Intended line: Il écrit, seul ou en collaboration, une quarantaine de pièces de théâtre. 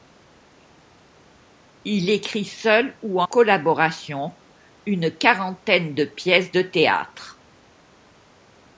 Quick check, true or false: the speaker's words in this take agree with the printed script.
false